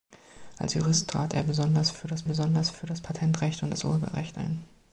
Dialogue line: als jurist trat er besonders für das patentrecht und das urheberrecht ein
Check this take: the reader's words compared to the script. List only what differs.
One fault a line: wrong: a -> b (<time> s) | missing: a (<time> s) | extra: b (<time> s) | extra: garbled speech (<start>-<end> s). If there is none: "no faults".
extra: besonders für das (2.2 s)